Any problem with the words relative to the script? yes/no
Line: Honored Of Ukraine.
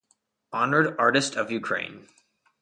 yes